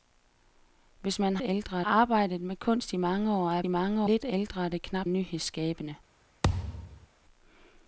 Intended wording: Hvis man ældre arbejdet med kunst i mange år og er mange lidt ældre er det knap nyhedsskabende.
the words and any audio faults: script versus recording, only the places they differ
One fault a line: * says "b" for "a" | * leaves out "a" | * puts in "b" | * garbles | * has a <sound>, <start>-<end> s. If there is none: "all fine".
* has a thud, 6.4-7.1 s